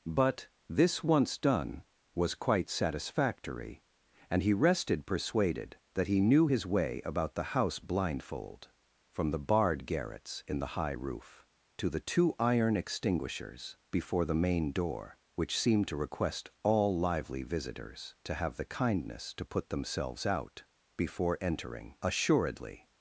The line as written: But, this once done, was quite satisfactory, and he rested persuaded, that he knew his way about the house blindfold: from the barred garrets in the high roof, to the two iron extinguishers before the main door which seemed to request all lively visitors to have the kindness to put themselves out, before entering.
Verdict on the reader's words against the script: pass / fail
fail